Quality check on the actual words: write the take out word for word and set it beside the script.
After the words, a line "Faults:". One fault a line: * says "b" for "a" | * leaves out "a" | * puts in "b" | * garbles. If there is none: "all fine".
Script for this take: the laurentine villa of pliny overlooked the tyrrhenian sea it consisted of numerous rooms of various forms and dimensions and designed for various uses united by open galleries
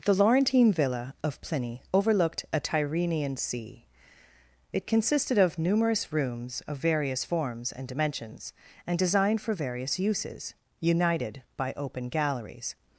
the laurentine villa of pliny overlooked a tyrrhenian sea it consisted of numerous rooms of various forms and dimensions and designed for various uses united by open galleries
Faults:
* says "a" for "the"